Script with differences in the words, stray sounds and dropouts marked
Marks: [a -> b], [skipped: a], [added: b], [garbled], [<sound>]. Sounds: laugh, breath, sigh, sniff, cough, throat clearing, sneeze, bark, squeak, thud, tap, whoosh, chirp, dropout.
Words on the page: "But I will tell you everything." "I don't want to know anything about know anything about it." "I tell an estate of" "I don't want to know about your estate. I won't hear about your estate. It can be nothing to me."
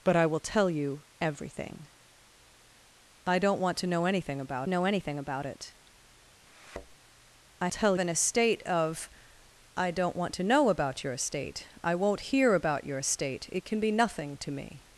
"But I will tell you everything." "I don't want to know anything about know anything about it." [thud] "I tell an estate of" "I don't want to know about your estate. I won't hear about your estate. It can be nothing to me."